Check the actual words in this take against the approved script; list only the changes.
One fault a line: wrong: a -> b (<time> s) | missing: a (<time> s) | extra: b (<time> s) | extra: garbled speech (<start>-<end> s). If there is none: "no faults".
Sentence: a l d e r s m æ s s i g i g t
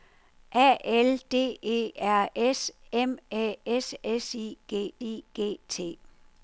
no faults